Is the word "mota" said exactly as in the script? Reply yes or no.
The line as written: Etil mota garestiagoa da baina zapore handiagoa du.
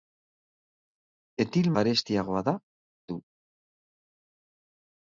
no